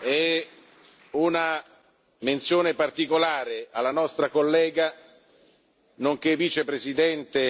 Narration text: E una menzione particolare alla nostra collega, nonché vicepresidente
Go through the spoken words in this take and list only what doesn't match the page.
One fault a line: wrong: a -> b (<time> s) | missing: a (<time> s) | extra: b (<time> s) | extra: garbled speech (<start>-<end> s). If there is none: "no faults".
no faults